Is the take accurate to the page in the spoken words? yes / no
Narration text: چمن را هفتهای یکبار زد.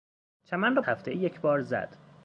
yes